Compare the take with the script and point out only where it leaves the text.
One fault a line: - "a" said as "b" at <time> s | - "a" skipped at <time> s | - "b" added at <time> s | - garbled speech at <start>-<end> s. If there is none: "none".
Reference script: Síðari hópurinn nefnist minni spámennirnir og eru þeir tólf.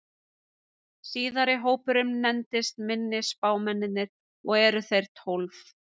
none